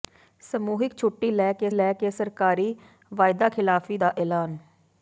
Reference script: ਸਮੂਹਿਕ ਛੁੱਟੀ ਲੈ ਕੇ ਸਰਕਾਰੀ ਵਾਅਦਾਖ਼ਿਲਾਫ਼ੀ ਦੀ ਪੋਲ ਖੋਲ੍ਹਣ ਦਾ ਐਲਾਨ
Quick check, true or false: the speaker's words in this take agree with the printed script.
false